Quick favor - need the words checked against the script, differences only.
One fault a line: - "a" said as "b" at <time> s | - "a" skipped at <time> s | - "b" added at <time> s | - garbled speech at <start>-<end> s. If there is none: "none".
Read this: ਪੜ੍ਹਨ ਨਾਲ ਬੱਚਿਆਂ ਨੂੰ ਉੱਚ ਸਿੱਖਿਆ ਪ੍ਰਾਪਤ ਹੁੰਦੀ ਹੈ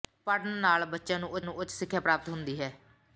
- "ਨੂੰ ਉੱਚ" added at 1.4 s